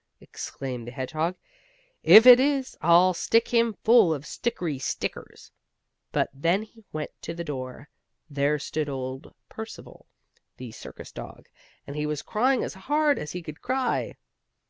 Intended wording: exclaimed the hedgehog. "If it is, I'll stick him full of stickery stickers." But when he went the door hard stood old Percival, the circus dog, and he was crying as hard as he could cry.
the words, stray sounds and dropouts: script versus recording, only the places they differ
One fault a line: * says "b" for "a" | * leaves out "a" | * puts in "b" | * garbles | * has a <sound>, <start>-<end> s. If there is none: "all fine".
* puts in "to"
* says "there" for "hard"